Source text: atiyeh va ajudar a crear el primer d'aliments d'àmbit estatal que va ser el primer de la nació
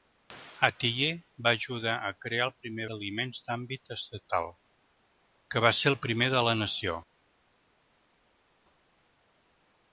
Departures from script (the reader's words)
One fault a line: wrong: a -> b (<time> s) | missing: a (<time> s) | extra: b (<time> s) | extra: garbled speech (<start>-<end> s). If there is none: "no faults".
no faults